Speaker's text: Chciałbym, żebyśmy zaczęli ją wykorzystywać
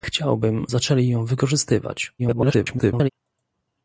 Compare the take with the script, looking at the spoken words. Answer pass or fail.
fail